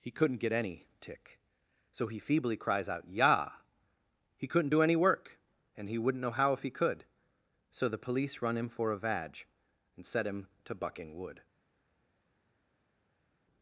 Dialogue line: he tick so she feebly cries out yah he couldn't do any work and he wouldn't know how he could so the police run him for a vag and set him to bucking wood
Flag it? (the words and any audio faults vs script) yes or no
yes